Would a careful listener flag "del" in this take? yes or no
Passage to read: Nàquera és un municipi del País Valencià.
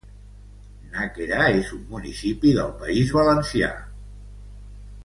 no